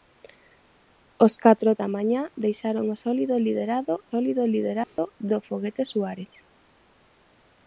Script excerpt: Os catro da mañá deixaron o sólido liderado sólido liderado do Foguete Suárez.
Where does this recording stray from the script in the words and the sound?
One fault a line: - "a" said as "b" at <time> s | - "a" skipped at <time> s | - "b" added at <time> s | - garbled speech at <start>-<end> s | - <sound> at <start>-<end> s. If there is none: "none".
- dropout at 4.8-5.0 s